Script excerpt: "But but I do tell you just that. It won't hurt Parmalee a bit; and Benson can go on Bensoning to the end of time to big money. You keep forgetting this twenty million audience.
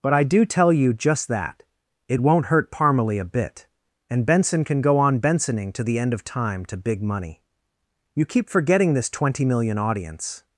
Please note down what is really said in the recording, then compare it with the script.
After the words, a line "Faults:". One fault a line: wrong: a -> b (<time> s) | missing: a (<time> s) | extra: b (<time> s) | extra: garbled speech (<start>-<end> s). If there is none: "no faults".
"But I do tell you just that. It won't hurt Parmalee a bit; and Benson can go on Bensoning to the end of time to big money. You keep forgetting this twenty million audience.
Faults:
missing: but (0.1 s)